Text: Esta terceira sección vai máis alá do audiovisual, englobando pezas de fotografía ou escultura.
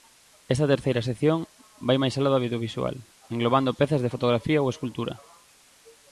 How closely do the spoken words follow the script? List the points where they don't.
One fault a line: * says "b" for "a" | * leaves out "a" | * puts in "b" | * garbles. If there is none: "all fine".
all fine